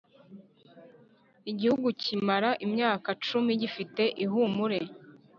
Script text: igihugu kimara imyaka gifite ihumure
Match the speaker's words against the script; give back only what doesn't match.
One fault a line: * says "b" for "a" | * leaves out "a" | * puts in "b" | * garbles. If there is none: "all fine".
* puts in "cumi"